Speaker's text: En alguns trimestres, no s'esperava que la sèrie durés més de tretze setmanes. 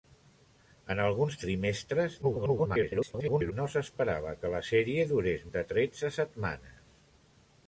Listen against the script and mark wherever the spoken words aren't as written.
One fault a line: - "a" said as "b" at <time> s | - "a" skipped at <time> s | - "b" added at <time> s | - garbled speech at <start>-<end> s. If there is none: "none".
- garbled speech at 2.2-3.5 s
- "més" skipped at 5.4 s